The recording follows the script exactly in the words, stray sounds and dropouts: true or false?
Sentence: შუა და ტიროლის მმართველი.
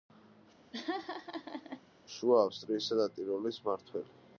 false